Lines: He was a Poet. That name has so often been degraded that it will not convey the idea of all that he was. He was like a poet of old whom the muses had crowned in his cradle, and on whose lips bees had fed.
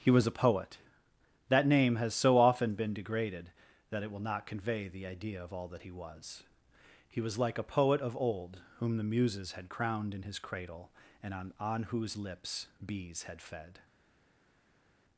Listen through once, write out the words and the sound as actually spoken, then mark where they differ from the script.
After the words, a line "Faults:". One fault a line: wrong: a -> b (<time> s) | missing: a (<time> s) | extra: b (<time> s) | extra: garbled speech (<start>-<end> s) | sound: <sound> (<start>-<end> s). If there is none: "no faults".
He was a Poet. That name has so often been degraded that it will not convey the idea of all that he was. He was like a poet of old whom the muses had crowned in his cradle, and on on whose lips bees had fed.
Faults:
extra: on (11.6 s)